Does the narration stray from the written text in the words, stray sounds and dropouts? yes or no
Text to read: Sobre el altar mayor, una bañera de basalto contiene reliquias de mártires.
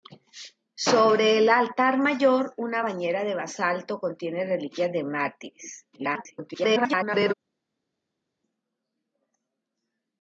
yes